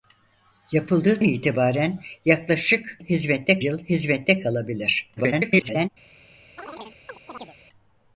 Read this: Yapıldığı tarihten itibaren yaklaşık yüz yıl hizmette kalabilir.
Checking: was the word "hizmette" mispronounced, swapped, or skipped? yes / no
no